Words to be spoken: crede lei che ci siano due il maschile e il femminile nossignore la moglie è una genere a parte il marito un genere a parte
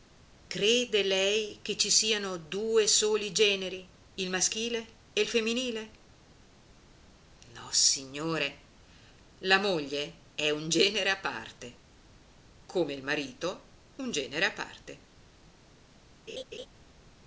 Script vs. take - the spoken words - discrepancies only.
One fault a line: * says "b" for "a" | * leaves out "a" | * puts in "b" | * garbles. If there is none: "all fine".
* puts in "soli generi"
* says "un" for "una"
* puts in "come"